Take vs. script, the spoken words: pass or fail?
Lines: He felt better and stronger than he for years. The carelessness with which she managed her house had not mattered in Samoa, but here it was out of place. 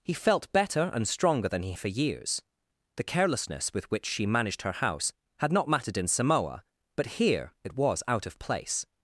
pass